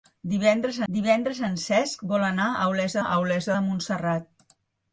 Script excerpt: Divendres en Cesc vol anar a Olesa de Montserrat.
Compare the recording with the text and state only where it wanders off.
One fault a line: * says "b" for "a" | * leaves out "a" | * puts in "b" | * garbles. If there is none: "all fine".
* puts in "divendres"
* puts in "a Olesa"